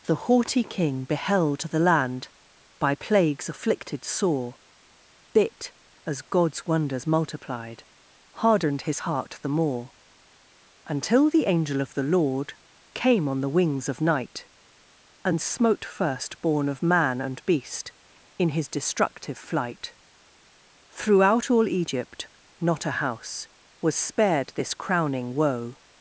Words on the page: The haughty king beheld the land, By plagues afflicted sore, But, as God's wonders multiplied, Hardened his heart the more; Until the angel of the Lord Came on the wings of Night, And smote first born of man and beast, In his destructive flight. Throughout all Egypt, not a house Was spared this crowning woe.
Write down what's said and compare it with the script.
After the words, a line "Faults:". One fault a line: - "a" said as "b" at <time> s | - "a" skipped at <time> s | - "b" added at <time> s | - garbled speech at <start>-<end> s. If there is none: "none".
The haughty king beheld the land, By plagues afflicted sore, Bit, as God's wonders multiplied, Hardened his heart the more; Until the angel of the Lord Came on the wings of Night, And smote first born of man and beast, In his destructive flight. Throughout all Egypt, not a house Was spared this crowning woe.
Faults:
- "But" said as "Bit" at 5.3 s